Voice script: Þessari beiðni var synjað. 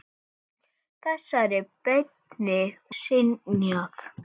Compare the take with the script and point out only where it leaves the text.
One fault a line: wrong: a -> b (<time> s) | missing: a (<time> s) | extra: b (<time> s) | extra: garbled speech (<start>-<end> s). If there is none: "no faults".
missing: var (2.6 s)